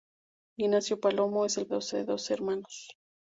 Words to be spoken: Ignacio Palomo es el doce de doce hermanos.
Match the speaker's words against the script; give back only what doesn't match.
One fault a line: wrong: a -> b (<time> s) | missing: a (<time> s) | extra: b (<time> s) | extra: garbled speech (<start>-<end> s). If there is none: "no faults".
no faults